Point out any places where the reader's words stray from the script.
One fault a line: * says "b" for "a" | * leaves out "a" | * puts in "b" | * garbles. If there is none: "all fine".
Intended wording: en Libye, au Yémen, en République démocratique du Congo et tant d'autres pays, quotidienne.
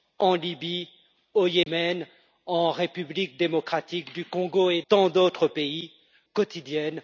all fine